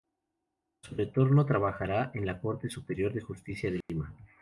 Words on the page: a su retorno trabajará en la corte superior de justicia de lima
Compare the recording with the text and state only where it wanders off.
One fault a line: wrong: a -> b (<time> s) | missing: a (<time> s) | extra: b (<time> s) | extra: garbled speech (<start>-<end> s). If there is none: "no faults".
no faults